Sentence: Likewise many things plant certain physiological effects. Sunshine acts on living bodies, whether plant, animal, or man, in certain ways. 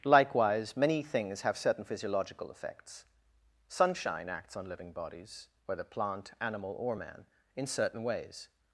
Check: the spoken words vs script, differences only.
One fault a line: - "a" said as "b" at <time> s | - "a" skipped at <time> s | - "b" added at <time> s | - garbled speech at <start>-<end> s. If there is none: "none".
- "plant" said as "have" at 1.4 s